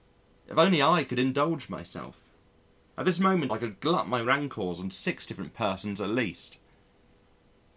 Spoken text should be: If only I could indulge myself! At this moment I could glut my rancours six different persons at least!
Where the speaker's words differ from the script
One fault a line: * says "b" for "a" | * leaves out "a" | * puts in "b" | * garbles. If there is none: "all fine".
* puts in "on"